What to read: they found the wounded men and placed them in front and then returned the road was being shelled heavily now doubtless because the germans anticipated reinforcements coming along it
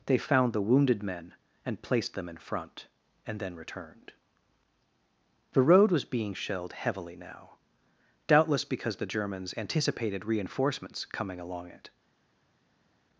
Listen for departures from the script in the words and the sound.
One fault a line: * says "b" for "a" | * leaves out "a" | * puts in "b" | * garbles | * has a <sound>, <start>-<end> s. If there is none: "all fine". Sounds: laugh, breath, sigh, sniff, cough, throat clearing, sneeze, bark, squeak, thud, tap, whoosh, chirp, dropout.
all fine